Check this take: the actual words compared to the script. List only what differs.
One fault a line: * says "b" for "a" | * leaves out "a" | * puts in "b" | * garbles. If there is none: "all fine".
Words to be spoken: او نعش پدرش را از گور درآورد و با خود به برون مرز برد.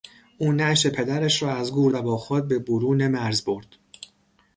* leaves out "درآورد"